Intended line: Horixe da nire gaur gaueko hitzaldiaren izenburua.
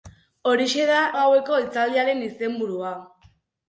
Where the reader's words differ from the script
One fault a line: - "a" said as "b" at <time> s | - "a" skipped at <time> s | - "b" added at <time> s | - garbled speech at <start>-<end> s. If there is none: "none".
- "nire gaur" skipped at 1.0 s